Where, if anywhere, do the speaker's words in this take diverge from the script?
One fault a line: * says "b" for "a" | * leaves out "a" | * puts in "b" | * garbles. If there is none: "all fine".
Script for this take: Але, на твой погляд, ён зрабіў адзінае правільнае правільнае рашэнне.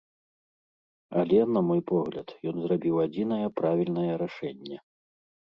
* says "мой" for "твой"
* leaves out "правільнае"